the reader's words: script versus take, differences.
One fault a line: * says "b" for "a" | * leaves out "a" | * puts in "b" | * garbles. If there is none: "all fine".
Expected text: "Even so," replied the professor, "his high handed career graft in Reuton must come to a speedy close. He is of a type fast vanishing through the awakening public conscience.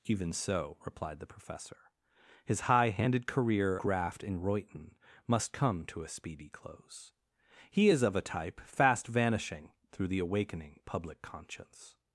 all fine